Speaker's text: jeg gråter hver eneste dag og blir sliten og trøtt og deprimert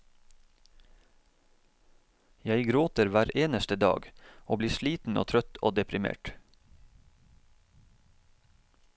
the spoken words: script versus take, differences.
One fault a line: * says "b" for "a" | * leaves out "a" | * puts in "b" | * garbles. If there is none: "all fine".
all fine